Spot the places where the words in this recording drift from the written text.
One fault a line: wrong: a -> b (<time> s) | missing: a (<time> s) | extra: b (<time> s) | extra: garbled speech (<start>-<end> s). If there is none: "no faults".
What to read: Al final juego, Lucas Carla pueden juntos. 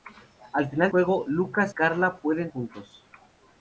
no faults